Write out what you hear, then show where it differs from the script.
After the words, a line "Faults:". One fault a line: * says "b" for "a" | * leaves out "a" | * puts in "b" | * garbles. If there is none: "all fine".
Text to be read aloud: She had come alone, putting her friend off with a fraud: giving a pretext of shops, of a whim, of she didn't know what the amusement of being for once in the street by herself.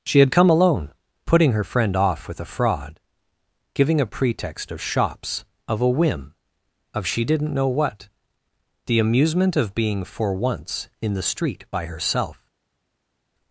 She had come alone, putting her friend off with a fraud: giving a pretext of shops, of a whim, of she didn't know what the amusement of being for once in the street by herself.
Faults:
all fine